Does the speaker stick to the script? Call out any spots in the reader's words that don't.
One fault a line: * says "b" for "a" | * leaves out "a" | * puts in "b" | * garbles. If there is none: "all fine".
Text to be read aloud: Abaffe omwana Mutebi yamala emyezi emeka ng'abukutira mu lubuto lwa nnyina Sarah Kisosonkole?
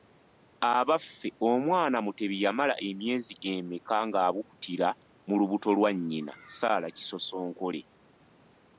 all fine